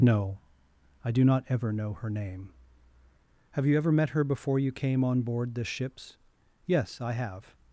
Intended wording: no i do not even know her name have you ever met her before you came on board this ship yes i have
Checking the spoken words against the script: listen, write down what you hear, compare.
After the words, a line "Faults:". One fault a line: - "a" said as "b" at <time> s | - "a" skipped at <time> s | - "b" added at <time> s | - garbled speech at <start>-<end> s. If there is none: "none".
no i do not ever know her name have you ever met her before you came on board this ships yes i have
Faults:
- "even" said as "ever" at 1.5 s
- "ship" said as "ships" at 5.7 s